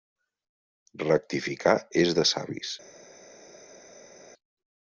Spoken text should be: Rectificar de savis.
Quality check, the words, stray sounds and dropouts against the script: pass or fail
fail